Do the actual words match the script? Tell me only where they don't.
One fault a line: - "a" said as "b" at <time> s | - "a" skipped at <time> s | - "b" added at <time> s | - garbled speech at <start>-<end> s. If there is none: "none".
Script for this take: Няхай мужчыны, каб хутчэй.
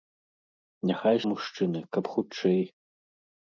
none